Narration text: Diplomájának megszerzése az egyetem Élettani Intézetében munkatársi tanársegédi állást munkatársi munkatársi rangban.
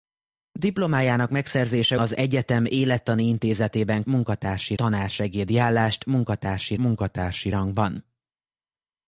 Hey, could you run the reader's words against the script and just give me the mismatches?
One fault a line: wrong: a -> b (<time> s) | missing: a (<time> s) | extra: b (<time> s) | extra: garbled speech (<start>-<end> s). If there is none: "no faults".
no faults